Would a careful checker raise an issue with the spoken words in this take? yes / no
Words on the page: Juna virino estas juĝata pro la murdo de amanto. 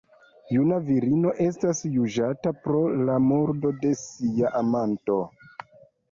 yes